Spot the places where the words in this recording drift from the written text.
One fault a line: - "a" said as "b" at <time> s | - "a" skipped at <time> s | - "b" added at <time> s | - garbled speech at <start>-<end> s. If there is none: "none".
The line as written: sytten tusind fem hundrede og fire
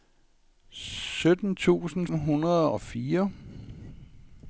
- "fem" skipped at 2.1 s